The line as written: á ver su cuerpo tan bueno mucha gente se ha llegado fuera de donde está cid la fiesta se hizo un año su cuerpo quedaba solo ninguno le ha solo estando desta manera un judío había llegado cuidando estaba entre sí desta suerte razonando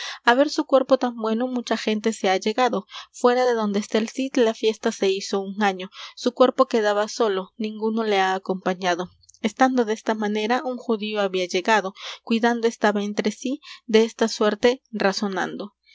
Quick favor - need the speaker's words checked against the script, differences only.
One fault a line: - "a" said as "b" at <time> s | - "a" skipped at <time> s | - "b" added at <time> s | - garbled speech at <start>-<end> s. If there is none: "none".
- "el" added at 4.0 s
- "solo" said as "acompañado" at 8.4 s